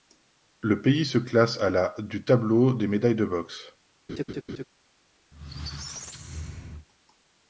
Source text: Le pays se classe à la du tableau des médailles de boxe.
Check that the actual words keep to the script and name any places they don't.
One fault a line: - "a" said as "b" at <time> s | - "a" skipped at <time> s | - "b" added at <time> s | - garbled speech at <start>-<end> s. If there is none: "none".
none